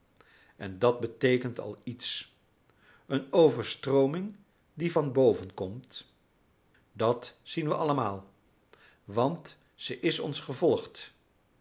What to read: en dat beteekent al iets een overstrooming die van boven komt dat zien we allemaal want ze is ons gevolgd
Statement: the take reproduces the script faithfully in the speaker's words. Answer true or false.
true